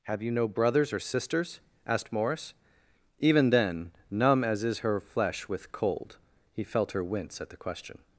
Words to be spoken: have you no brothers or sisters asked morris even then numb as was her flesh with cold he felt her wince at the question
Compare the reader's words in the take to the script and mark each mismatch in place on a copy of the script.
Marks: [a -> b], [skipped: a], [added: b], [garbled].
have you no brothers or sisters asked morris even then numb as [was -> is] her flesh with cold he felt her wince at the question